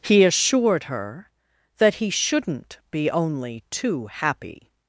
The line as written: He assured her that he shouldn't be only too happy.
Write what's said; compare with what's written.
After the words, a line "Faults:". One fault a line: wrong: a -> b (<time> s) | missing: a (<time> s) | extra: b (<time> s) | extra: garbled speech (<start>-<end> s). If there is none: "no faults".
He assured her that he shouldn't be only too happy.
Faults:
no faults